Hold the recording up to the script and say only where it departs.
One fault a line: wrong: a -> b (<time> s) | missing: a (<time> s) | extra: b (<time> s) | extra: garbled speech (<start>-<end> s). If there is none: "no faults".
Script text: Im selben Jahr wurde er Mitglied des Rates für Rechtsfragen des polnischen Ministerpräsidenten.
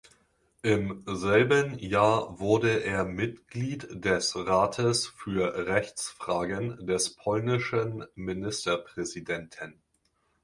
no faults